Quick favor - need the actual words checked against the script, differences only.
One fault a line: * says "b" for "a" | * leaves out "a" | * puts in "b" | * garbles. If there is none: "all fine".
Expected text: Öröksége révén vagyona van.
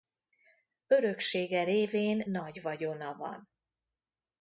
* puts in "nagy"